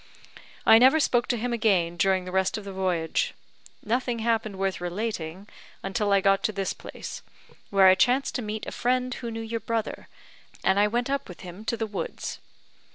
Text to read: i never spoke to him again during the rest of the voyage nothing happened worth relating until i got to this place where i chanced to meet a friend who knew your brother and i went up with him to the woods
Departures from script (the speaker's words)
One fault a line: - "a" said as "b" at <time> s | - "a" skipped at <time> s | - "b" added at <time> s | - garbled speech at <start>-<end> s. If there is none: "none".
none